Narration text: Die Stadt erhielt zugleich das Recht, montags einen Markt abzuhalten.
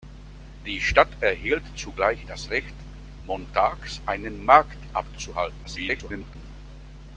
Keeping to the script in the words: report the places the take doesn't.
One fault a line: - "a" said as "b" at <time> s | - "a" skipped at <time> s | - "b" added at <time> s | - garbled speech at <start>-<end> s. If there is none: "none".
- garbled speech at 5.6-6.4 s